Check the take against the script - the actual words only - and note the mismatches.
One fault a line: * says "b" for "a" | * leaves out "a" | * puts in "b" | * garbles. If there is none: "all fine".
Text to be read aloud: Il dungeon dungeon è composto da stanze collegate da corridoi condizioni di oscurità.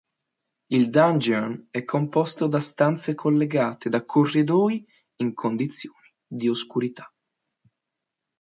* leaves out "dungeon"
* puts in "in"